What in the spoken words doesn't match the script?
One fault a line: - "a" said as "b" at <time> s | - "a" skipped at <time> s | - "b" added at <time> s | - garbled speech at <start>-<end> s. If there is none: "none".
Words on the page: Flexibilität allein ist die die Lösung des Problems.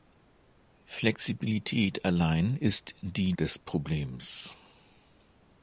- "die Lösung" skipped at 3.3 s